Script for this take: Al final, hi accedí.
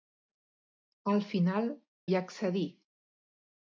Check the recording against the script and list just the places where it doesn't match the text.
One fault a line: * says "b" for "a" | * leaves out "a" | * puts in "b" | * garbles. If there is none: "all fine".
all fine